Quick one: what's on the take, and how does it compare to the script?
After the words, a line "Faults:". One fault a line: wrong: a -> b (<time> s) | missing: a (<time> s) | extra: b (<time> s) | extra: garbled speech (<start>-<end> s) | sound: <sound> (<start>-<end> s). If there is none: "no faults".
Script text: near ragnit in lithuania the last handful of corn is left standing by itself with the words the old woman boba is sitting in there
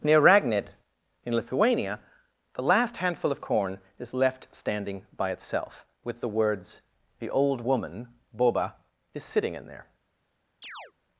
near ragnit in lithuania the last handful of corn is left standing by itself with the words the old woman boba is sitting in there
Faults:
sound: chirp (10.6-10.9 s)